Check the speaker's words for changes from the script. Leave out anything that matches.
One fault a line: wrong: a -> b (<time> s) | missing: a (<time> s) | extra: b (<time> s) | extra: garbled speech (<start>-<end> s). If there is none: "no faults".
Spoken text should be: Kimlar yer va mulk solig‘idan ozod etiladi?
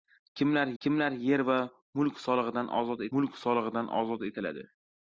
extra: kimlar (0.8 s)
extra: mulk solig‘idan ozod (3.2 s)